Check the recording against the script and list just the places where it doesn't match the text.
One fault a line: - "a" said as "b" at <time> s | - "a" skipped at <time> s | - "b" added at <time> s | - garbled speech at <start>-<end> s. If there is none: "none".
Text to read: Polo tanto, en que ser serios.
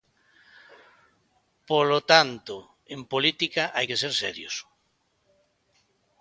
- "política hai" added at 3.1 s